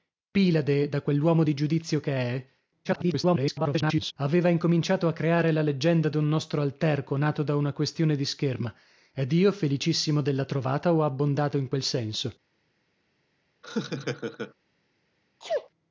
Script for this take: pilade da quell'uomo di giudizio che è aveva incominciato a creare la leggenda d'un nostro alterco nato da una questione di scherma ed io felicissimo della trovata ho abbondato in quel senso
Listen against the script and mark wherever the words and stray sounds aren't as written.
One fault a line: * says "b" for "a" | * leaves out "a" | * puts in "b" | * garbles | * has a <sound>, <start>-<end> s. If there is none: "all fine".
* garbles
* has a laugh, 13.6-14.5 s
* has a sneeze, 15.4-15.7 s